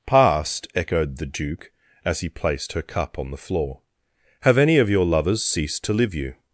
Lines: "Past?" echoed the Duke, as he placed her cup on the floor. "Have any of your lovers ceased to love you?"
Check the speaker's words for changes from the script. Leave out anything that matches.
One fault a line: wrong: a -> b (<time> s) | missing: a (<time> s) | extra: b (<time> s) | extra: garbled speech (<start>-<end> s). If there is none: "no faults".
wrong: love -> live (5.9 s)